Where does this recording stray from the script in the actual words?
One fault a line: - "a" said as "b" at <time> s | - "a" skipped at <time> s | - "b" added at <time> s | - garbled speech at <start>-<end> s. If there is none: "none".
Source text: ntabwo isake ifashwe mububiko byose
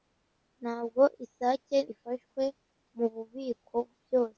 none